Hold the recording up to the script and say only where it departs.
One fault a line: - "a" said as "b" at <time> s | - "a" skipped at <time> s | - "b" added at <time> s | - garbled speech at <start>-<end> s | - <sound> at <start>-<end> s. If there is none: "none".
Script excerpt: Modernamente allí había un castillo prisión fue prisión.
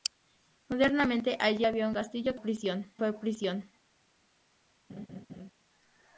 - laugh at 4.9-5.5 s